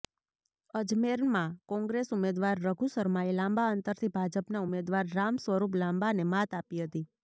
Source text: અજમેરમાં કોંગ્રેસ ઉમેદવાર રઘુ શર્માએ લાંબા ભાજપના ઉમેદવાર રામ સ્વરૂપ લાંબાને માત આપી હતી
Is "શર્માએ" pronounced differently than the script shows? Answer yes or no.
no